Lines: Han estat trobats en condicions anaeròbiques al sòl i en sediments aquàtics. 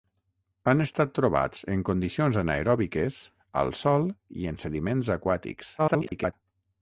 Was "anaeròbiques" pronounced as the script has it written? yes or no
yes